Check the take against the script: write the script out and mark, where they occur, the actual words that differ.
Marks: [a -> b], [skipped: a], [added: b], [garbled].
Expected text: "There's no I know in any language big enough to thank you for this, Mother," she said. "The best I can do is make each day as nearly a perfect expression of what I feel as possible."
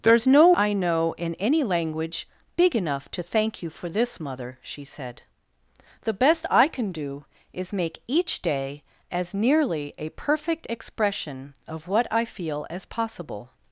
"There's no I know in any language big enough to thank you for this, Mother," she said. "The best I can do is make each day as nearly a perfect expression of what I feel as possible."